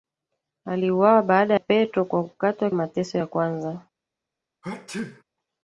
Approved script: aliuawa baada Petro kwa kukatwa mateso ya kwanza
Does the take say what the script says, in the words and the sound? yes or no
no